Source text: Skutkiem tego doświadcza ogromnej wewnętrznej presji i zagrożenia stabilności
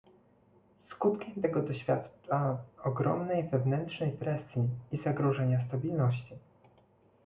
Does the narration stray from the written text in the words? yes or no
no